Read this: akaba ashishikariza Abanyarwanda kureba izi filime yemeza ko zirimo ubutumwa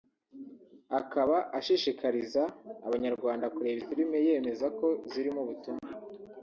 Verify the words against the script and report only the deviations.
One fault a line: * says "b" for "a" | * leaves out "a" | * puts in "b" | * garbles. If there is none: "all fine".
* leaves out "izi"